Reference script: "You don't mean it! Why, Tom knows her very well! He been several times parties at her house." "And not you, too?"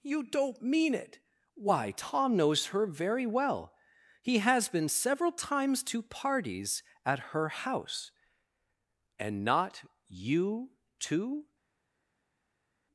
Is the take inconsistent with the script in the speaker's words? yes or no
yes